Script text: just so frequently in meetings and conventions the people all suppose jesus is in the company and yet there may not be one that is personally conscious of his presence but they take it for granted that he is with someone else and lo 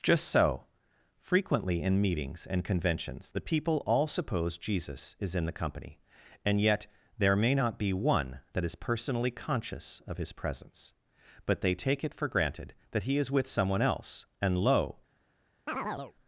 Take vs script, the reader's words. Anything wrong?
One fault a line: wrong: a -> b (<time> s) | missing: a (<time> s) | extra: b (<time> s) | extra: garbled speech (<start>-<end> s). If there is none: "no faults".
no faults